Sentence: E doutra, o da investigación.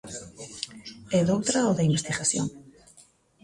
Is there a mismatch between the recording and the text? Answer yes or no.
no